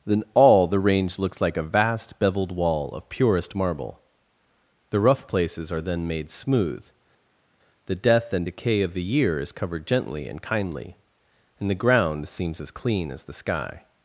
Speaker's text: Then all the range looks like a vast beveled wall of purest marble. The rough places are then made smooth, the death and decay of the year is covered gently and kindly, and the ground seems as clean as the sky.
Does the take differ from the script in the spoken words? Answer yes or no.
no